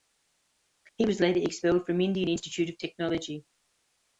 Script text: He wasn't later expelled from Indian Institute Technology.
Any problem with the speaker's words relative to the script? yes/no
yes